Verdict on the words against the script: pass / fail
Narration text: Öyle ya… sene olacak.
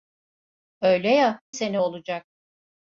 pass